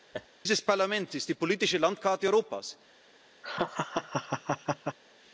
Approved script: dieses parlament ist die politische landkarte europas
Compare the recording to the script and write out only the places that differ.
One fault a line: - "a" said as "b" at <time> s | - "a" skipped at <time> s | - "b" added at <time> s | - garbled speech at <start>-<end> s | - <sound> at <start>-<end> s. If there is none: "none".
- laugh at 0.1-0.3 s
- laugh at 3.4-5.0 s